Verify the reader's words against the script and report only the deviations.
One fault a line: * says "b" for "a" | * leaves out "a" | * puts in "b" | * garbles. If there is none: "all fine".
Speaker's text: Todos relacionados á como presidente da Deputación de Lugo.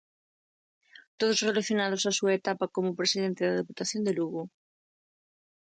* puts in "súa etapa"